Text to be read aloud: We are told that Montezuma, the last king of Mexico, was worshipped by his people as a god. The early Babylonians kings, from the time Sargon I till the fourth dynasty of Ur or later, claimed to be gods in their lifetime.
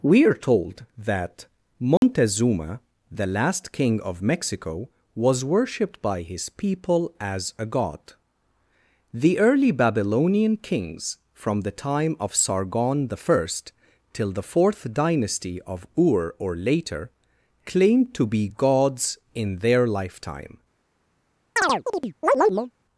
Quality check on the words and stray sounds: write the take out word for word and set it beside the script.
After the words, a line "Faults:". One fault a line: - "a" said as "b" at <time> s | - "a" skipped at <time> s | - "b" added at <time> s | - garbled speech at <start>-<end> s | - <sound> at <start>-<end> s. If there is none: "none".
We are told that Montezuma, the last king of Mexico, was worshipped by his people as a god. The early Babylonian kings, from the time of Sargon I till the fourth dynasty of Ur or later, claimed to be gods in their lifetime.
Faults:
- dropout at 2.0-2.0 s
- "Babylonians" said as "Babylonian" at 9.7 s
- "of" added at 12.2 s
- chirp at 21.6-22.7 s